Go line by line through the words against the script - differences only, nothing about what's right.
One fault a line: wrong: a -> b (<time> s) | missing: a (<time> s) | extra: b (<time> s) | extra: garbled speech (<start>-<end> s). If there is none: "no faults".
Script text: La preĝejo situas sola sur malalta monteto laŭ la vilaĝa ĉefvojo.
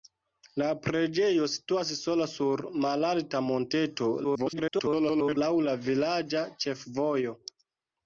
extra: garbled speech (4.2-5.4 s)